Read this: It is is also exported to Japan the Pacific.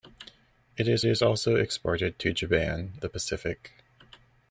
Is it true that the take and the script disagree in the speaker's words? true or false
false